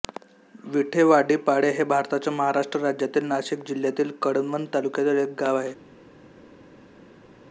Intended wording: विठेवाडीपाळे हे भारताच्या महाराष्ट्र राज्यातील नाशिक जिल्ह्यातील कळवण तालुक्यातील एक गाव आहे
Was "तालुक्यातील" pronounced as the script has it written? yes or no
yes